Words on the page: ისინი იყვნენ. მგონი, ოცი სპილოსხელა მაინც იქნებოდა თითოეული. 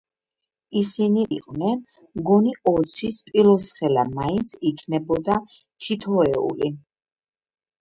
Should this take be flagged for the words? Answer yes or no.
no